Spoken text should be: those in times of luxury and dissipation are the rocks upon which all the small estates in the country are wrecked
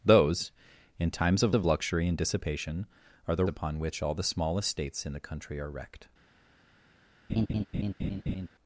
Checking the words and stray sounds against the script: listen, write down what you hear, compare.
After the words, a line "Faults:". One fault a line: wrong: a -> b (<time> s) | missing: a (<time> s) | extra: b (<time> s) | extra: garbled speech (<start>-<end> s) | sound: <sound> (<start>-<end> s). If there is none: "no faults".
those in times of of luxury and dissipation are the upon which all the small estates in the country are wrecked
Faults:
extra: of (1.5 s)
missing: rocks (3.4 s)
sound: laugh (7.3-8.5 s)